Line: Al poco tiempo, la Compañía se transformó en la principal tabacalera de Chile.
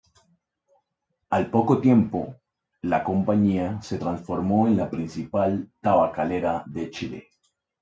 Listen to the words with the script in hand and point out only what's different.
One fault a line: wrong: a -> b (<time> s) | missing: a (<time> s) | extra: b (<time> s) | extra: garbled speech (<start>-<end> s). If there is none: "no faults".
no faults